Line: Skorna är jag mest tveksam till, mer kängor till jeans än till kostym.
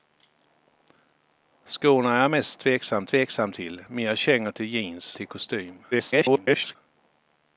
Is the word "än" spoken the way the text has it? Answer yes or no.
no